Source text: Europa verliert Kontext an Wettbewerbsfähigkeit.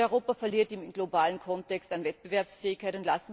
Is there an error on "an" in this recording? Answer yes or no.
no